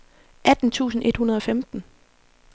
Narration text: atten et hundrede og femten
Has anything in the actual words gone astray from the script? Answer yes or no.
yes